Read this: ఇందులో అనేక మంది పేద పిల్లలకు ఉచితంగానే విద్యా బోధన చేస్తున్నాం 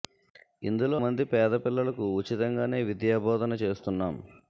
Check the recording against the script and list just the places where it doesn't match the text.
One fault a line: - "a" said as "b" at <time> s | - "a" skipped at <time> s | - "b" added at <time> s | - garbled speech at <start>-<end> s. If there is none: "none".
- "అనేక" skipped at 1.0 s